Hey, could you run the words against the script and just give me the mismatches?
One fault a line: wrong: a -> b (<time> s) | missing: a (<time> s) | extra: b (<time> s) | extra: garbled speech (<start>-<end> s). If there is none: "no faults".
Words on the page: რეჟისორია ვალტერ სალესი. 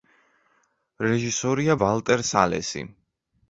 no faults